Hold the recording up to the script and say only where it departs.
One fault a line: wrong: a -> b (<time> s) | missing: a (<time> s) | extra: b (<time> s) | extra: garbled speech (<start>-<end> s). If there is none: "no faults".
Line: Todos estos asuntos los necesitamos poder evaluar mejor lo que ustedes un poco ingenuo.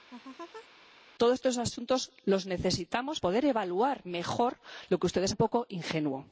no faults